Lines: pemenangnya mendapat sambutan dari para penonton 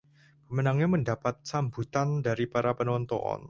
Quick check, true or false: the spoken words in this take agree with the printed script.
true